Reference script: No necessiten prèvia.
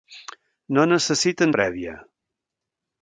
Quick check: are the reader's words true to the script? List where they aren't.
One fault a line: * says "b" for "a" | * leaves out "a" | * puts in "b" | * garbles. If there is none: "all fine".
all fine